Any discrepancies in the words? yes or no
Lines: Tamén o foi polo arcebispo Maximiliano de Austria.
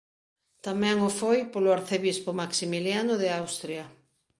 no